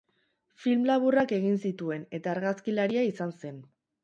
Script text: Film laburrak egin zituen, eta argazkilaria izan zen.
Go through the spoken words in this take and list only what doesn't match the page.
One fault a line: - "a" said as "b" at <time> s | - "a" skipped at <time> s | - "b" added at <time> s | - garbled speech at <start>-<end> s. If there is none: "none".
none